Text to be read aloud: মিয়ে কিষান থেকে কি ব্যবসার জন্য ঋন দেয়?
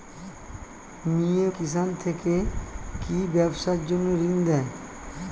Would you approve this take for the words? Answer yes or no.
yes